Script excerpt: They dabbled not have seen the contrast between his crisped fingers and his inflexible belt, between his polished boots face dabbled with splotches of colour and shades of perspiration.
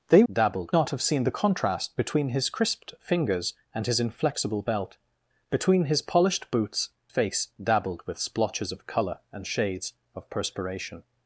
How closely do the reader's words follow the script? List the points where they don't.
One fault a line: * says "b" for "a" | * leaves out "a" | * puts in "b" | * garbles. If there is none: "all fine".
all fine